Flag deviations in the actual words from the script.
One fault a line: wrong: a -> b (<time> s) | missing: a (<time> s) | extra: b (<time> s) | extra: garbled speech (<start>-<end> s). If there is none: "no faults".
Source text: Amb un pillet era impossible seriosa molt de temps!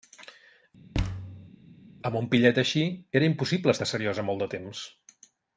extra: així (2.6 s)
extra: estar (3.8 s)